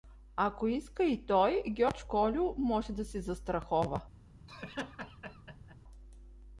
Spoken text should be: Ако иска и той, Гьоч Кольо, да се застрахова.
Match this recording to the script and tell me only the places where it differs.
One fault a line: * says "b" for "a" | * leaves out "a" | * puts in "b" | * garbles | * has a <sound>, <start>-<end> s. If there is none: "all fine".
* puts in "може"
* has a laugh, 4.5-5.8 s